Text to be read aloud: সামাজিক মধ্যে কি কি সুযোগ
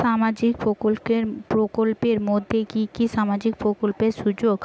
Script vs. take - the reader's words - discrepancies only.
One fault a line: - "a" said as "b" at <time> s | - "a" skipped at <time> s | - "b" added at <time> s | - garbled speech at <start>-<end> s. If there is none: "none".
- "প্রকল্পের" added at 1.5 s
- "সামাজিক প্রকল্পের" added at 3.1 s